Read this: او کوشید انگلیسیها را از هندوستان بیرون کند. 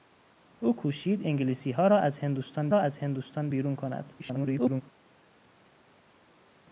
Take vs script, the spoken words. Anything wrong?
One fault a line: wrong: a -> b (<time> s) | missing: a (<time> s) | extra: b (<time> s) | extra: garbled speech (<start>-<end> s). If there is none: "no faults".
extra: را از هندوستان (2.7 s)
extra: garbled speech (4.2-4.8 s)